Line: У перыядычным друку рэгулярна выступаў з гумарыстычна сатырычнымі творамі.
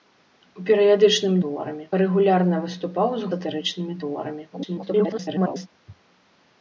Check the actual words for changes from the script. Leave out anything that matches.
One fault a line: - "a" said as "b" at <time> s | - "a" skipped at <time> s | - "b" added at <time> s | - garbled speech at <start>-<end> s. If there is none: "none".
- "друку" said as "творамі" at 1.5 s
- "гумарыстычна" skipped at 3.3 s
- garbled speech at 4.5-5.7 s